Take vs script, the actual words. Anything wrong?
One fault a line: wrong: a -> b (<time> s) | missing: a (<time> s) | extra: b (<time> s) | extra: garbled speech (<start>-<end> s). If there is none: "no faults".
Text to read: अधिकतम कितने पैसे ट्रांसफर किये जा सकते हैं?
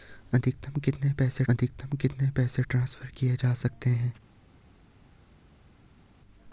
extra: अधिकतम कितने पैसे (1.5 s)